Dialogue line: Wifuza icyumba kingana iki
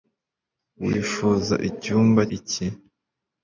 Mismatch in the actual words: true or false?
true